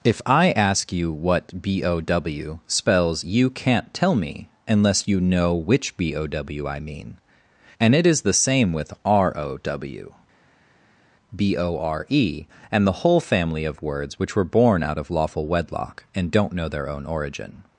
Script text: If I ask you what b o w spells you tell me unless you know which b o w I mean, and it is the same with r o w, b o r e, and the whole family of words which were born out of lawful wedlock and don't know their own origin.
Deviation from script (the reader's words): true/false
true